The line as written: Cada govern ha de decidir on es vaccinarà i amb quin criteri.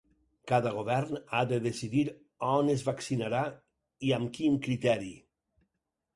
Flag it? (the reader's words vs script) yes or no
no